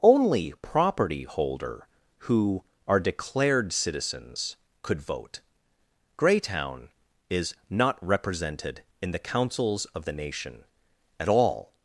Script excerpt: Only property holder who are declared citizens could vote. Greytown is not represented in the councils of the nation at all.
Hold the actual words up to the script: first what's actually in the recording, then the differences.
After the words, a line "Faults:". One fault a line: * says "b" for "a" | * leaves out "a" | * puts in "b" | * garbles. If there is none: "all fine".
Only property holder who are declared citizens could vote. Greytown is not represented in the councils of the nation at all.
Faults:
all fine